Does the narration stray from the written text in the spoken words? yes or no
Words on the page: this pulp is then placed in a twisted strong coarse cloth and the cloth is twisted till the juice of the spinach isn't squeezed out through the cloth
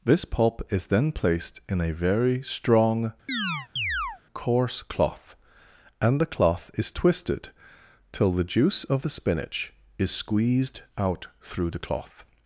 yes